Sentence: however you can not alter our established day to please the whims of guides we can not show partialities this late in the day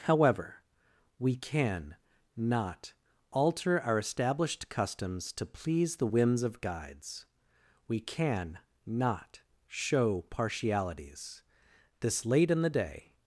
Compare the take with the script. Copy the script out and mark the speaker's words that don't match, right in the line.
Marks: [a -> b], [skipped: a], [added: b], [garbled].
however [you -> we] can not alter our established [day -> customs] to please the whims of guides we can not show partialities this late in the day